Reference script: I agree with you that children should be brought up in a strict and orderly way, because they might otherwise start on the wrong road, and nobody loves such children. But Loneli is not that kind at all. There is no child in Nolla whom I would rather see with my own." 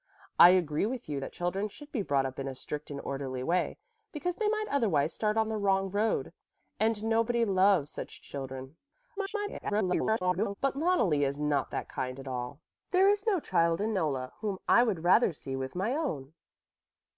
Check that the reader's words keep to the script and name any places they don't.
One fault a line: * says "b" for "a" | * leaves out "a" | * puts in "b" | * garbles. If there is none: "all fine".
* garbles